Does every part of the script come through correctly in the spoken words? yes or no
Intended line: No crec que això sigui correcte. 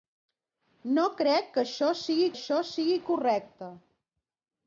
no